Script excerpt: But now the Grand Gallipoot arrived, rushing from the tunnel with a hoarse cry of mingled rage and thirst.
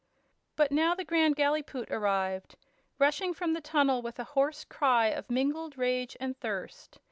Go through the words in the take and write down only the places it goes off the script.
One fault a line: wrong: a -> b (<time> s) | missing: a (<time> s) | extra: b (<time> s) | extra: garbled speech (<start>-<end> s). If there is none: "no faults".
no faults